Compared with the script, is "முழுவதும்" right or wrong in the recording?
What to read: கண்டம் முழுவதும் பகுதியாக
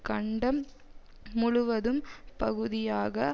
right